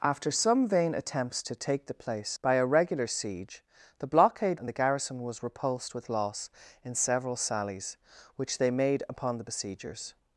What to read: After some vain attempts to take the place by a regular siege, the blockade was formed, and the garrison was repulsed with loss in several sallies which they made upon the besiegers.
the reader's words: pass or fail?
fail